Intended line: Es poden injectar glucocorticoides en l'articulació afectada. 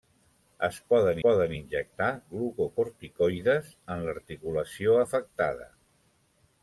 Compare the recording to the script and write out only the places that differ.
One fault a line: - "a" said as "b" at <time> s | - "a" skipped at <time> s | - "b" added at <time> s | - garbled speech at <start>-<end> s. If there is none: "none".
- "poden" added at 1.3 s